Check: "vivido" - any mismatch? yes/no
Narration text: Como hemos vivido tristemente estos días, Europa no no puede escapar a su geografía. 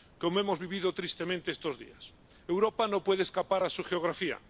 no